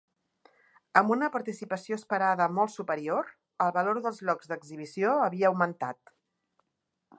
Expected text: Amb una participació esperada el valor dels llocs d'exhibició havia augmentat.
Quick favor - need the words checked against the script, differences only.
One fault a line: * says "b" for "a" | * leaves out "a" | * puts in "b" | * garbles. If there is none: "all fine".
* puts in "molt superior"